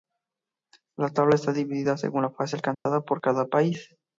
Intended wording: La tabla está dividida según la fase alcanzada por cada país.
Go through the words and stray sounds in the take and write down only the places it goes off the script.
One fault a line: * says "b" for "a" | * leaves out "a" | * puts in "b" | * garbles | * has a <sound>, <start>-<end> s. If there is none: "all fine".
* has a dropout, 2.7-2.9 s